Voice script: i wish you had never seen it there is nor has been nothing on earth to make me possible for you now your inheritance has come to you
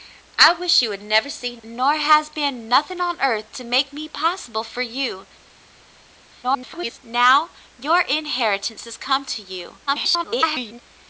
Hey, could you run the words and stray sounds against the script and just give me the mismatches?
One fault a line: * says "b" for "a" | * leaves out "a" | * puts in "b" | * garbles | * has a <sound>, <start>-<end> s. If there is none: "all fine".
* leaves out "it there is"
* garbles
* garbles